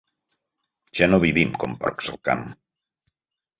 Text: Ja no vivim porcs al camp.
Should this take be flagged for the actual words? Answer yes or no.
yes